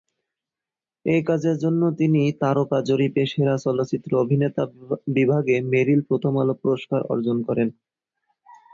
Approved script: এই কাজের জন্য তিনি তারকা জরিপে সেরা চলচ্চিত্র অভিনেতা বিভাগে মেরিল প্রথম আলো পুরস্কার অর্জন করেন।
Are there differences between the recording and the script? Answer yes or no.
no